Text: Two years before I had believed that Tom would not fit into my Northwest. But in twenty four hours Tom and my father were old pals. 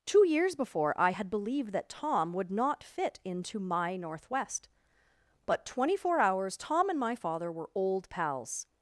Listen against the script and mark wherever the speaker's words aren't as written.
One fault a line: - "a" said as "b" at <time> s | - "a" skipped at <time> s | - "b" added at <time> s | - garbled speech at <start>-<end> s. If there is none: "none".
- "in" skipped at 5.7 s